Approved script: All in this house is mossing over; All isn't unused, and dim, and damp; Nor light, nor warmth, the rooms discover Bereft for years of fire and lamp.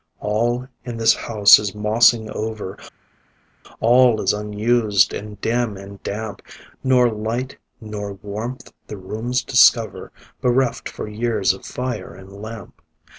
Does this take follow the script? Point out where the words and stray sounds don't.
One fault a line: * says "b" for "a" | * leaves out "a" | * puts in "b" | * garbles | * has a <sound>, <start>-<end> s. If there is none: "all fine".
* says "is" for "isn't"